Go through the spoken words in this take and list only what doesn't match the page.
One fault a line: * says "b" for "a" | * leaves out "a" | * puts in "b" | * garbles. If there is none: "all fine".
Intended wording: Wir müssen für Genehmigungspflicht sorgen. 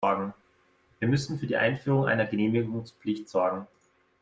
* puts in "die Einführung einer"